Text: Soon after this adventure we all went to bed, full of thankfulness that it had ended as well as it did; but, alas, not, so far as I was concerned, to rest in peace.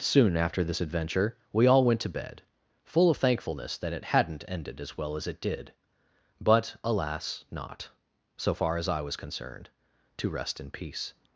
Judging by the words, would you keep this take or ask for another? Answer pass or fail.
fail